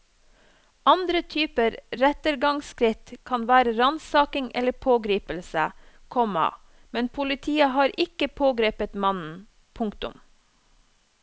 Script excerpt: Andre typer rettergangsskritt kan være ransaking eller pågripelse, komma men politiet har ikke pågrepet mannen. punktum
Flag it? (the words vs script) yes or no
no